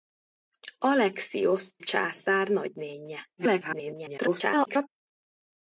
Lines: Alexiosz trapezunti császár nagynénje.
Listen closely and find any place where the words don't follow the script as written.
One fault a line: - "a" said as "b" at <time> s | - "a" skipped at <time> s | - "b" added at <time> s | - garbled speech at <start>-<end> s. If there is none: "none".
- "trapezunti" skipped at 1.8 s
- garbled speech at 3.4-4.9 s